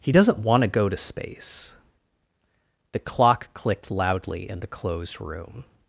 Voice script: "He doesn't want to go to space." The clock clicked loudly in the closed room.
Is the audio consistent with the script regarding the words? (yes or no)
yes